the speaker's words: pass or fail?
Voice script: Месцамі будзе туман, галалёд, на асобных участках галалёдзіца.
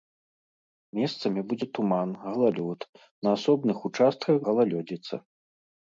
pass